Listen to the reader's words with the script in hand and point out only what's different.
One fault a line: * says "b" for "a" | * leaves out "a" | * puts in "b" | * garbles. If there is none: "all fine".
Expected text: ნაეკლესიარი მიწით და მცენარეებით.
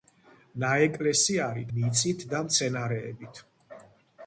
all fine